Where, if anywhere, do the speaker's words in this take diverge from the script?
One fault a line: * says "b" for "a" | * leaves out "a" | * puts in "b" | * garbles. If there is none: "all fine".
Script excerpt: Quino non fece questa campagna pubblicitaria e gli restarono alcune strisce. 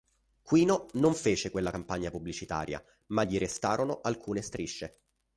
* says "quella" for "questa"
* says "ma" for "e"